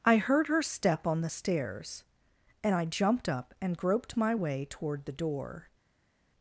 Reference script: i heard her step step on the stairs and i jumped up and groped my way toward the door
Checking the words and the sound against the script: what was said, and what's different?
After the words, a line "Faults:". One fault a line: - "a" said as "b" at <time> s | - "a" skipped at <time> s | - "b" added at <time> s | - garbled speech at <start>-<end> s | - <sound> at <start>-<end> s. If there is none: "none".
i heard her step on the stairs and i jumped up and groped my way toward the door
Faults:
- "step" skipped at 1.1 s